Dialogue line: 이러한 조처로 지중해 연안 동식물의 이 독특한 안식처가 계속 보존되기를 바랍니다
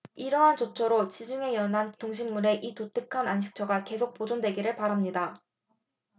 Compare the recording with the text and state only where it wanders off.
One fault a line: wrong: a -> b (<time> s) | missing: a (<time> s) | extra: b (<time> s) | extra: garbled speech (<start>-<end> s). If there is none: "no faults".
no faults